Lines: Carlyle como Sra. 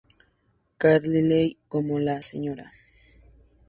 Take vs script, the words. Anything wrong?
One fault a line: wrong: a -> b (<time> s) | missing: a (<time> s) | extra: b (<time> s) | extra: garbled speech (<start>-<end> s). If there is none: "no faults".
extra: la (2.0 s)